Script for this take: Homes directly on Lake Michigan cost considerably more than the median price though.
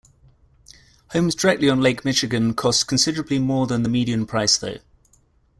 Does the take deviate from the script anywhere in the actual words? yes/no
no